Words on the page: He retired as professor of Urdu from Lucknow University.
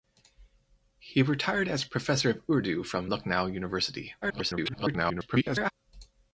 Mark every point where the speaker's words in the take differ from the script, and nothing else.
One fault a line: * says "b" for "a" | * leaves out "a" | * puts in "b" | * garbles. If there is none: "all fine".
* garbles